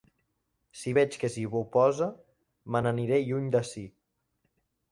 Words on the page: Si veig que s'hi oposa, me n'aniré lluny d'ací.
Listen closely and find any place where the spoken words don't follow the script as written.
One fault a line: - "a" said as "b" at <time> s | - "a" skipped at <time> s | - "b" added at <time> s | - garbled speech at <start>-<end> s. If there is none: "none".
none